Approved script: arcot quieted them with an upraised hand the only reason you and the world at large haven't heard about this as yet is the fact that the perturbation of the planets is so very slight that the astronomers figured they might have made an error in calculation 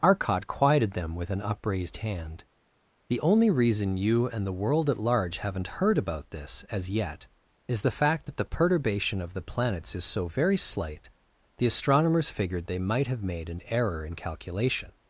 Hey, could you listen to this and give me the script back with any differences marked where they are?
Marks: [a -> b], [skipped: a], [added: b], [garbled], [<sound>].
arcot quieted them with an upraised hand the only reason you and the world at large haven't heard about this as yet is the fact that the perturbation of the planets is so very slight [skipped: that] the astronomers figured they might have made an error in calculation